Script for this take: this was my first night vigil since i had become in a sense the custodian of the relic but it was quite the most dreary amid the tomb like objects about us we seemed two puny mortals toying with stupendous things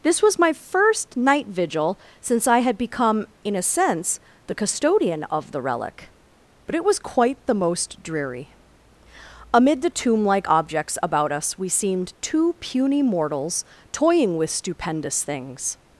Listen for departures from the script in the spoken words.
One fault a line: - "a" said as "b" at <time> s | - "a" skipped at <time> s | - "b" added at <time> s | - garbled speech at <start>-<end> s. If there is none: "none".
none